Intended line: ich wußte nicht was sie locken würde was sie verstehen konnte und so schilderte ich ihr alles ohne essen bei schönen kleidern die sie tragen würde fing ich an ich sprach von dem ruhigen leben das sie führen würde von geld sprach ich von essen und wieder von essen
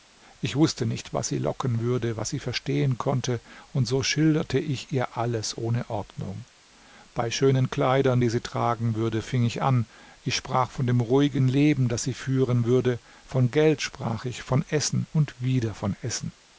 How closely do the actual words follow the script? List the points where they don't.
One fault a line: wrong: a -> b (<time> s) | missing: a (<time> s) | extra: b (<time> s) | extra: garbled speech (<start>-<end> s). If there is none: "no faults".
wrong: essen -> ordnung (5.9 s)